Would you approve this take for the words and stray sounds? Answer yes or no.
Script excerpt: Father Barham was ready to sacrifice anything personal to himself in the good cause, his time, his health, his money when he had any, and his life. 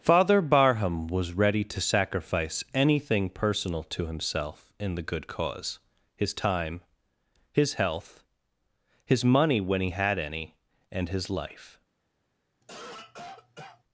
no